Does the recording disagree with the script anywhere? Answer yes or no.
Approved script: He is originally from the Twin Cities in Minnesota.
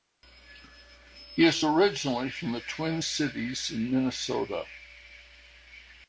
no